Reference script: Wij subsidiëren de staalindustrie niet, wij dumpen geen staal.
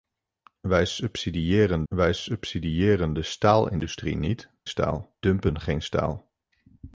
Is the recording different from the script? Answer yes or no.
yes